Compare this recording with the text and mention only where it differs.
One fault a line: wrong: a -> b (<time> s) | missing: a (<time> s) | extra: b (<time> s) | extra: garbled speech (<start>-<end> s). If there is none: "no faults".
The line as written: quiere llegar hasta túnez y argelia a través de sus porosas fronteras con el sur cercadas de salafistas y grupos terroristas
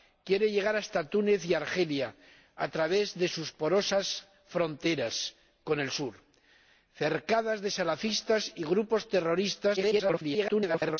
extra: garbled speech (9.8-11.0 s)